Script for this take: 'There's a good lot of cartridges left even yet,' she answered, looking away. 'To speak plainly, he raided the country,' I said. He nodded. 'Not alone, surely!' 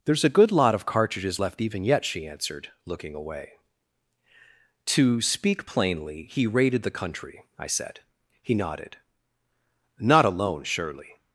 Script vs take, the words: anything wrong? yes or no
no